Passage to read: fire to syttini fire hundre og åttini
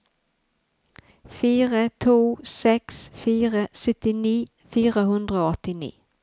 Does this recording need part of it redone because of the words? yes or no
yes